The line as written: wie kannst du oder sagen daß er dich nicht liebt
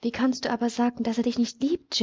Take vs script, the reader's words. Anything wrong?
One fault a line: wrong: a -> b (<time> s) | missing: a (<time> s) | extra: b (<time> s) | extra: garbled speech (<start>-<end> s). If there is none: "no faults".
wrong: oder -> aber (0.5 s)